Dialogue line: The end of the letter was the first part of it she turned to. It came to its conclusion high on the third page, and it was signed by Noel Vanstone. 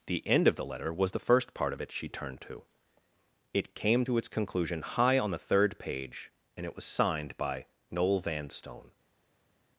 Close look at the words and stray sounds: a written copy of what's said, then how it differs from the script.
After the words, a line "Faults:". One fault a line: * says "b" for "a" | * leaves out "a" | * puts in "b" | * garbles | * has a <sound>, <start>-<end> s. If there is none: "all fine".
The end of the letter was the first part of it she turned to. It came to its conclusion high on the third page, and it was signed by Noel Vanstone.
Faults:
all fine